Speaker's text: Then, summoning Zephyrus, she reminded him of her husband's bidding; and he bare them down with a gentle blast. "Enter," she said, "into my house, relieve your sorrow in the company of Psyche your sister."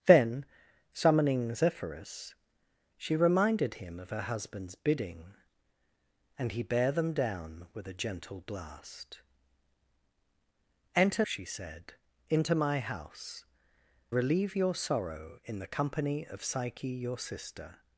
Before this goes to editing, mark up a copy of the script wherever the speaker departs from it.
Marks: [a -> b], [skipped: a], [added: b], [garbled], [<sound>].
Then, summoning Zephyrus, she reminded him of her husband's bidding; and he bare them down with a gentle blast. "Enter," she said, "into my house, relieve your sorrow in the company of Psyche your sister."